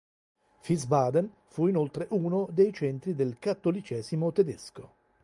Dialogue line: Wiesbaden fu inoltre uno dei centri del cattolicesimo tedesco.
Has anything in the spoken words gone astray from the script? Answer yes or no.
no